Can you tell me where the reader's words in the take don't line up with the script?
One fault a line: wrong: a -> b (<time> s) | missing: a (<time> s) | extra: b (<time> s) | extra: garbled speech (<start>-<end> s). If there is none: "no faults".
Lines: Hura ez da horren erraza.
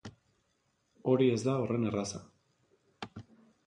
wrong: Hura -> Hori (1.1 s)